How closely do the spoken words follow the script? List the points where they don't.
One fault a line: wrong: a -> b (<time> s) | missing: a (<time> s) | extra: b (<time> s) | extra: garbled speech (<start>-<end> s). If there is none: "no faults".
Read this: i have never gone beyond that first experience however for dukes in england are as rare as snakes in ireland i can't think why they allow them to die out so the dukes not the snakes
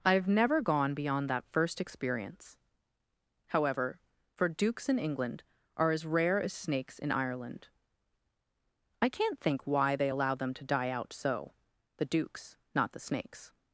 no faults